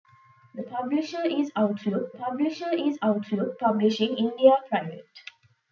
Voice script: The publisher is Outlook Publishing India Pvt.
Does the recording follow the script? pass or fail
fail